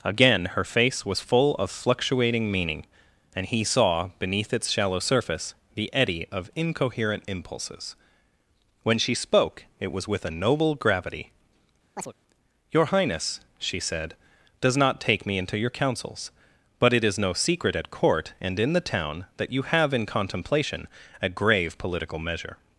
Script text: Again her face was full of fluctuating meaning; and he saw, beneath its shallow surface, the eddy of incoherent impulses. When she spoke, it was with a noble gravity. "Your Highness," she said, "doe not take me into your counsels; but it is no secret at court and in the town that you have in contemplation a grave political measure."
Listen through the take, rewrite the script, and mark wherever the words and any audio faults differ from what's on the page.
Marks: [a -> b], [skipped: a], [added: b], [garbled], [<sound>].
Again her face was full of fluctuating meaning; and he saw, beneath its shallow surface, the eddy of incoherent impulses. When she spoke, it was with a noble gravity. [chirp] "Your Highness," she said, ["doe -> does] not take me into your counsels; but it is no secret at court and in the town that you have in contemplation a grave political measure."